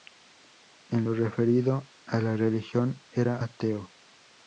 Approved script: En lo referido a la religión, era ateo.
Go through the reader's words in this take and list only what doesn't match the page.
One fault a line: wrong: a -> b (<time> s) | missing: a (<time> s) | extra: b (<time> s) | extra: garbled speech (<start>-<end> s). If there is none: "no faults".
no faults